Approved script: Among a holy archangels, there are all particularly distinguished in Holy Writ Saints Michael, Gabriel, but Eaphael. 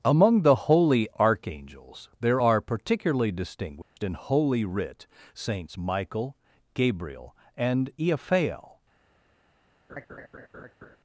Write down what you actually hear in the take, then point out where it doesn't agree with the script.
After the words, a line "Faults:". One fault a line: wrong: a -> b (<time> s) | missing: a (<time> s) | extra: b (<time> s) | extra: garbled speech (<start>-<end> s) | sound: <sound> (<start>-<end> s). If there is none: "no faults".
Among the holy archangels, there are particularly distinguished in Holy Writ Saints Michael, Gabriel, and Eaphael.
Faults:
wrong: a -> the (0.4 s)
missing: all (2.6 s)
sound: dropout (3.8-4.0 s)
wrong: but -> and (7.6 s)
sound: laugh (9.9-11.0 s)